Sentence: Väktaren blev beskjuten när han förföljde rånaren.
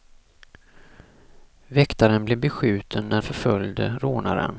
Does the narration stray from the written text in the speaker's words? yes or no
yes